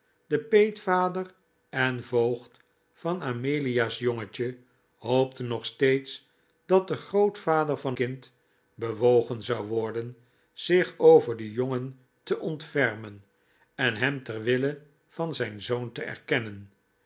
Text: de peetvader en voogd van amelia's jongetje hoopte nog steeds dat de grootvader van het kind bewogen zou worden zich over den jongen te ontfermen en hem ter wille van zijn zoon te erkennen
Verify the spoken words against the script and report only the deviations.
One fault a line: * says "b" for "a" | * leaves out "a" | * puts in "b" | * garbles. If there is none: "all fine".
* leaves out "het"